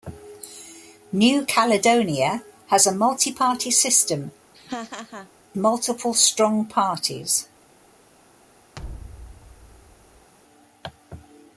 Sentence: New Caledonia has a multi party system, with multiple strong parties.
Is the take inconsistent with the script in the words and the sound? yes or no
yes